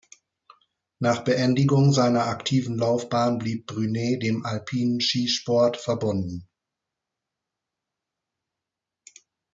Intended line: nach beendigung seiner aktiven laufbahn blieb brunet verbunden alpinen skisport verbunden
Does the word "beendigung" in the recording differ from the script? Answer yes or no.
no